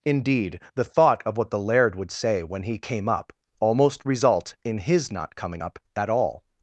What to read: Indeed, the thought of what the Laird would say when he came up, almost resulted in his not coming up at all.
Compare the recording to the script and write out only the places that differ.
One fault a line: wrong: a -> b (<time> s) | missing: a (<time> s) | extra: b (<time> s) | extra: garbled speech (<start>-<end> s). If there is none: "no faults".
wrong: resulted -> result (4.0 s)